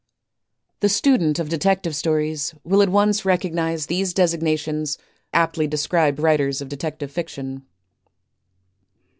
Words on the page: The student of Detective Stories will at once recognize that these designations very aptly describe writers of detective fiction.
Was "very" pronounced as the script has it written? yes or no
no